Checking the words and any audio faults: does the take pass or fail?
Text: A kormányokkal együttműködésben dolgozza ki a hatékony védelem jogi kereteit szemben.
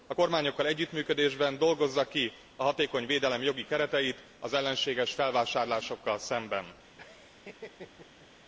fail